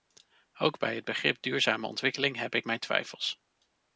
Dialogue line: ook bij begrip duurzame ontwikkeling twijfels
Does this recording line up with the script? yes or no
no